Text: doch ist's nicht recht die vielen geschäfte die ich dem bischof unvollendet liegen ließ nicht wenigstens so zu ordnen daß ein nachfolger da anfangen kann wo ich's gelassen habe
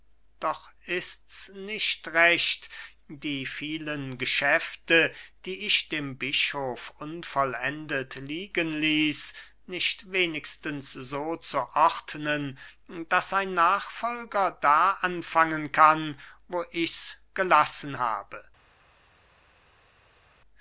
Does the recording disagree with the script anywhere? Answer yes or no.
no